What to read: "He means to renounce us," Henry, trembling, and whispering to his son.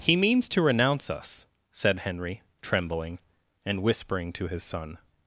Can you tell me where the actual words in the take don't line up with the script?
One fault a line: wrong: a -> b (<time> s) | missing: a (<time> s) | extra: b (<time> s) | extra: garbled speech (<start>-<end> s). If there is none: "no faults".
extra: said (1.7 s)